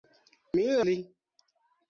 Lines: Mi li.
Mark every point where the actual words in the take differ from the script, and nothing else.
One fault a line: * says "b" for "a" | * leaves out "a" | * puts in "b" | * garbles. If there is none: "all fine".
all fine